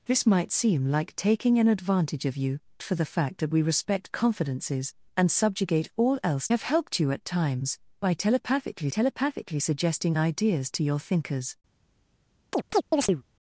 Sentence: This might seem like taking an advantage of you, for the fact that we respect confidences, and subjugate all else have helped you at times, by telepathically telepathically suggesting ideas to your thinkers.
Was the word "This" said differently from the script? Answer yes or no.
no